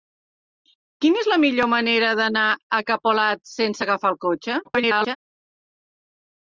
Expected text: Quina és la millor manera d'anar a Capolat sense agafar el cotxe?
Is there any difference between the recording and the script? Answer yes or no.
yes